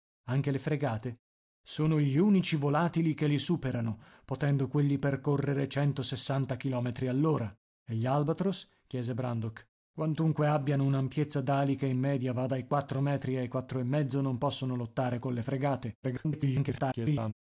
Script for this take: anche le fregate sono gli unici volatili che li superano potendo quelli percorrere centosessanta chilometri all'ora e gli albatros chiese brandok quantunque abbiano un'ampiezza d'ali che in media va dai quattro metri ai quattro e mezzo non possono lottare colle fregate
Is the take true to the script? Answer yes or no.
no